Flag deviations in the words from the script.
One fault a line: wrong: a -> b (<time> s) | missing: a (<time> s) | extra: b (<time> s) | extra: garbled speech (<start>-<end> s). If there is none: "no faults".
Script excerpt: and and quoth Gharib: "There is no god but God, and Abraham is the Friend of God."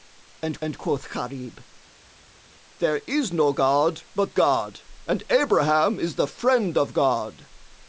no faults